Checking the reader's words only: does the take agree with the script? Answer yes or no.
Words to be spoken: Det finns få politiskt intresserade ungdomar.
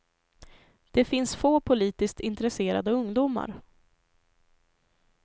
yes